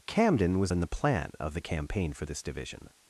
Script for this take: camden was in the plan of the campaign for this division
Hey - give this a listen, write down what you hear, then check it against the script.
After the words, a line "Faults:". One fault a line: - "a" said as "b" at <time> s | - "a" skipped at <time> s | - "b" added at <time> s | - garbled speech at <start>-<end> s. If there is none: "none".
camden was in the plan of the campaign for this division
Faults:
none